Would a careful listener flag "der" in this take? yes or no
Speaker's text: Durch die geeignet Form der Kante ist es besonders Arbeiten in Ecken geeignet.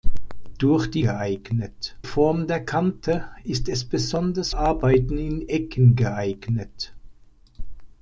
no